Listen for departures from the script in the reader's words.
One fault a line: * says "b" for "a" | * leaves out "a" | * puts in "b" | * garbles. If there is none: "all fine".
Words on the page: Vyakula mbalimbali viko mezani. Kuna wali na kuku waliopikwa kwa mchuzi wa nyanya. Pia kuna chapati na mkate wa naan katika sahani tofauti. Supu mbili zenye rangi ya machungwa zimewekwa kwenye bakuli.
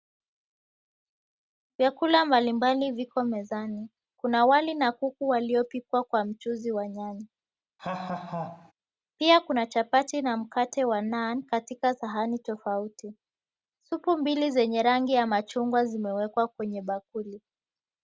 all fine